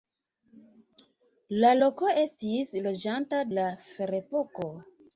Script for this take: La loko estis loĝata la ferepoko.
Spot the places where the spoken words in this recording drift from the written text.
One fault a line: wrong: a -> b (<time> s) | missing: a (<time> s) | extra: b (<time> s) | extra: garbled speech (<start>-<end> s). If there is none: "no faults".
no faults